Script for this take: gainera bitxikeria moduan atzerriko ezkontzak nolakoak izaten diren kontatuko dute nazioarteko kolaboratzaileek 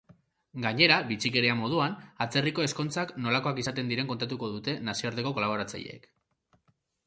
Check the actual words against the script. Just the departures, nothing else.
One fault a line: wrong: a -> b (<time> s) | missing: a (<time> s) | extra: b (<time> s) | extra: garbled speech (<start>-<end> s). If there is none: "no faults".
no faults